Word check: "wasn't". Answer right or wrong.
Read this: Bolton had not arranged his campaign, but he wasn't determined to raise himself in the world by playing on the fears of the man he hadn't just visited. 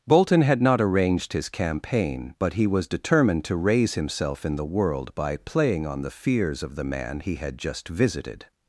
wrong